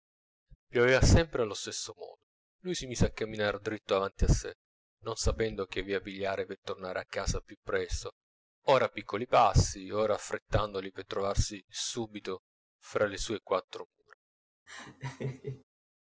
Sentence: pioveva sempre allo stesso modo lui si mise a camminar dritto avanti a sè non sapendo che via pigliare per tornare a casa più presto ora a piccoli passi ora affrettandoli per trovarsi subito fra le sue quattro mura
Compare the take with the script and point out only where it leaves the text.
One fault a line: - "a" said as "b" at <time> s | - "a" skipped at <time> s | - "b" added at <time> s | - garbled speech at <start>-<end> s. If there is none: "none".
none